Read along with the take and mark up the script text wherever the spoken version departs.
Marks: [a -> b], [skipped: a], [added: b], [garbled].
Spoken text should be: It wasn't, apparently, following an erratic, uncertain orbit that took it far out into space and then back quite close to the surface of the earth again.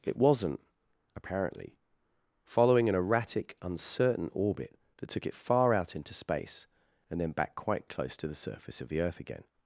It wasn't, apparently, following an erratic, uncertain orbit that took it far out into space and then back quite close to the surface of the earth again.